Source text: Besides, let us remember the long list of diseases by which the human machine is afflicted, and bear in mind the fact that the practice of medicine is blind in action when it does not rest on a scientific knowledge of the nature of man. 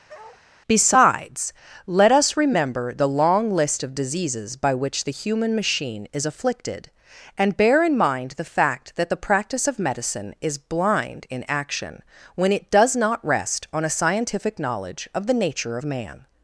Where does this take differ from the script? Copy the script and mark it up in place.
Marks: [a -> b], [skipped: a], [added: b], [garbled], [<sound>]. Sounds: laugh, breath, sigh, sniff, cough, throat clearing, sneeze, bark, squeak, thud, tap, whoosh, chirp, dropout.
[bark] Besides, let us remember the long list of diseases by which the human machine is afflicted, and bear in mind the fact that the practice of medicine is blind in action when it does not rest on a scientific knowledge of the nature of man.